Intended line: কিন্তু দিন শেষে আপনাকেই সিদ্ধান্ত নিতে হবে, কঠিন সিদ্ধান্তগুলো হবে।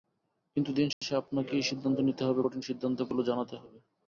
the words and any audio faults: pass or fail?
fail